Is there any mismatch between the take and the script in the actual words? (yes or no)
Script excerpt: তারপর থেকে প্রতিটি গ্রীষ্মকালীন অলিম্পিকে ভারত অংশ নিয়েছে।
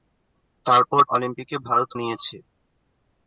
yes